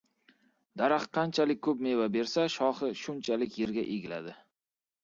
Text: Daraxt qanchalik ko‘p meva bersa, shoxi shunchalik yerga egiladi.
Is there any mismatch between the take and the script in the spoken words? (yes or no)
no